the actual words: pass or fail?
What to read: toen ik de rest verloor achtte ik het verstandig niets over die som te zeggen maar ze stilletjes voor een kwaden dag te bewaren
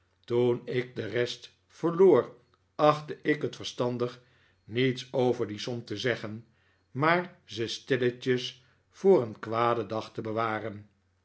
pass